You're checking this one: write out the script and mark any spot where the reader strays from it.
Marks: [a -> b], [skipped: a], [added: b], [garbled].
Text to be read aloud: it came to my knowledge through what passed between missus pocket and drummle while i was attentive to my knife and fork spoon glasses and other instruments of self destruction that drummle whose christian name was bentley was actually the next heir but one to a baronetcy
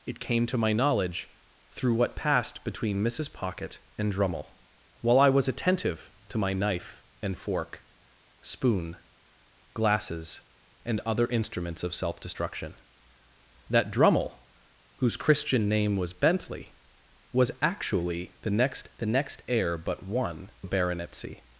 it came to my knowledge through what passed between missus pocket and drummle while i was attentive to my knife and fork spoon glasses and other instruments of self destruction that drummle whose christian name was bentley was actually the next [added: the next] heir but one [skipped: to] a baronetcy